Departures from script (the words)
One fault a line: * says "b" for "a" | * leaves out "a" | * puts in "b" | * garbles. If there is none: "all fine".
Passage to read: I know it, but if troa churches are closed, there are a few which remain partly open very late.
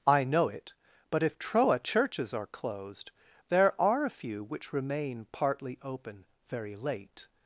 all fine